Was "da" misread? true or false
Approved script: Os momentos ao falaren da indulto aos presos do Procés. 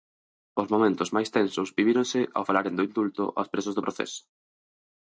true